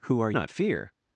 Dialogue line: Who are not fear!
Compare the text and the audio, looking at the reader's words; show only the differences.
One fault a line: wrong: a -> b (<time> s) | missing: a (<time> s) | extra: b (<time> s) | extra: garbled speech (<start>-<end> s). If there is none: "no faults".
no faults